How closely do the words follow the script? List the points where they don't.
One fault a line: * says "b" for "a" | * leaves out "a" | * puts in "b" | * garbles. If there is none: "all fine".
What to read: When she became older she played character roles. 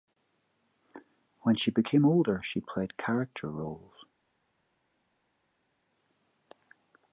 all fine